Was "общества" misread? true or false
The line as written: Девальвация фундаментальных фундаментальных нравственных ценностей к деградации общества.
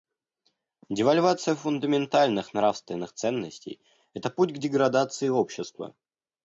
false